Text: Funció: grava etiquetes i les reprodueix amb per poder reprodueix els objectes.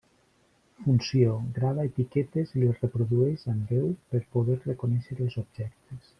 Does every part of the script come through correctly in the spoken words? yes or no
no